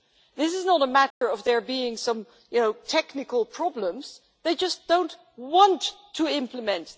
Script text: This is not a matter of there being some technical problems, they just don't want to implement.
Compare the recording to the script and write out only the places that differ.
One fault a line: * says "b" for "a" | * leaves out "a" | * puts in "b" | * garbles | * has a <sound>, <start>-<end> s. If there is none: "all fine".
* has a dropout, 1.1-1.2 s